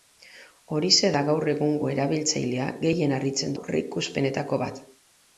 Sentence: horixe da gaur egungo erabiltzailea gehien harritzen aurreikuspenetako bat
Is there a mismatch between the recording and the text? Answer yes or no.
no